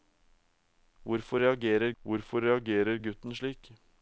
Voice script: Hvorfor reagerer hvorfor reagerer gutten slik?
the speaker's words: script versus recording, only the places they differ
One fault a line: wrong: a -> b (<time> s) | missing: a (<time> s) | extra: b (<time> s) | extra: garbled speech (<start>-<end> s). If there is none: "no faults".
no faults